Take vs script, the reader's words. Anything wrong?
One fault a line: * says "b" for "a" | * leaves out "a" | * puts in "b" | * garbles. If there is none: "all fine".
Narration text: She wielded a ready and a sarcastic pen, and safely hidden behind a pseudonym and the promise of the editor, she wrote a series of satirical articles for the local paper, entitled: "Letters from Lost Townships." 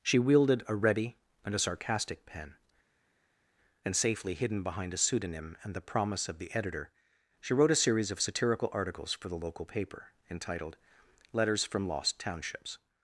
all fine